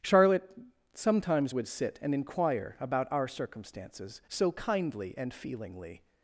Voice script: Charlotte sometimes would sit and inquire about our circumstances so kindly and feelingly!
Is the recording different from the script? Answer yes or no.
no